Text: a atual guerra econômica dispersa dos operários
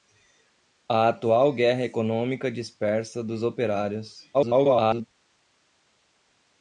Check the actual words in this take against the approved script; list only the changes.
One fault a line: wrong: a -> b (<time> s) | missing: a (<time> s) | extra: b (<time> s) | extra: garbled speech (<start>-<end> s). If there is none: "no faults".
extra: garbled speech (4.3-5.1 s)